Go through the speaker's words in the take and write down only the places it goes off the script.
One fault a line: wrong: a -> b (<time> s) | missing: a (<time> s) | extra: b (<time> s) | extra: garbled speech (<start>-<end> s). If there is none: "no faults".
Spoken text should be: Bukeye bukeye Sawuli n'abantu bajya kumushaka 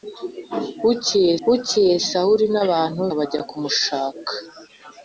no faults